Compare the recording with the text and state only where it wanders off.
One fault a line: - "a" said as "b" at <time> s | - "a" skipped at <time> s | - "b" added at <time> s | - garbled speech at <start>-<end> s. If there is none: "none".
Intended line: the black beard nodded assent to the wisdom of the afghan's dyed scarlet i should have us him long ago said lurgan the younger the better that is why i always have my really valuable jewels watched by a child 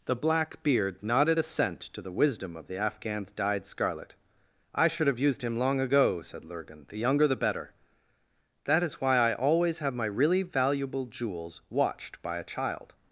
- "us" said as "used" at 5.2 s